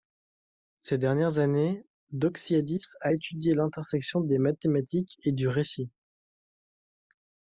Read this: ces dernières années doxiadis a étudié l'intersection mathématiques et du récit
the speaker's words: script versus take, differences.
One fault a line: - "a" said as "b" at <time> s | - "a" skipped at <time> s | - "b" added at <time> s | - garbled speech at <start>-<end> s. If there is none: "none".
- "des" added at 4.2 s